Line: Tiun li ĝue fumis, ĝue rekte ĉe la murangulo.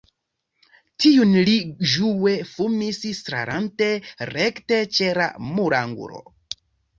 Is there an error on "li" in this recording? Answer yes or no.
no